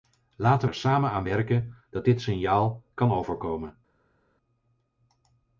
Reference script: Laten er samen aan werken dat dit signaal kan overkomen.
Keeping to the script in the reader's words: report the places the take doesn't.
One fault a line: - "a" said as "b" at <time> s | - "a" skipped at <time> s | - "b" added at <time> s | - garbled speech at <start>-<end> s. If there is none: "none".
none